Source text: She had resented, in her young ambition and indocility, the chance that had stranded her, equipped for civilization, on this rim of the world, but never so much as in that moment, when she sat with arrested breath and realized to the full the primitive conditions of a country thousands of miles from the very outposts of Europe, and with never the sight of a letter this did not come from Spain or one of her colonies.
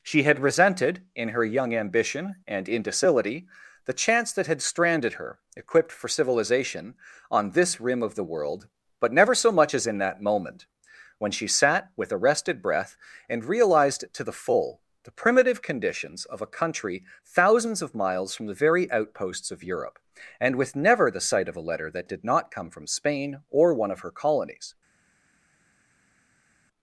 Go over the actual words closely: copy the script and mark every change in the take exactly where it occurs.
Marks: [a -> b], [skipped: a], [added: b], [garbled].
She had resented, in her young ambition and indocility, the chance that had stranded her, equipped for civilization, on this rim of the world, but never so much as in that moment, when she sat with arrested breath and realized to the full the primitive conditions of a country thousands of miles from the very outposts of Europe, and with never the sight of a letter [this -> that] did not come from Spain or one of her colonies.